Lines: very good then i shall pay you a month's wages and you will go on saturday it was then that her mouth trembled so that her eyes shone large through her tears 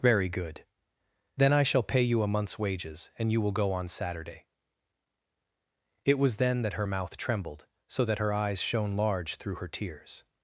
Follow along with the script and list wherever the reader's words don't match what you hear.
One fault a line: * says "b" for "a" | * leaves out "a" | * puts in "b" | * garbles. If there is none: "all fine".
all fine